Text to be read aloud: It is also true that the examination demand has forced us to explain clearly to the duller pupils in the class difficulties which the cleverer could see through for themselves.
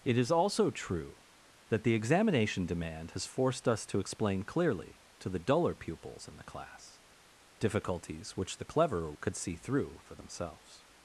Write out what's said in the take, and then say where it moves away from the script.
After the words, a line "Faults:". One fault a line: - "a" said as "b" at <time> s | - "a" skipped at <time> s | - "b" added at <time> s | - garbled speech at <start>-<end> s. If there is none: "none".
It is also true that the examination demand has forced us to explain clearly to the duller pupils in the class difficulties which the cleverer could see through for themselves.
Faults:
none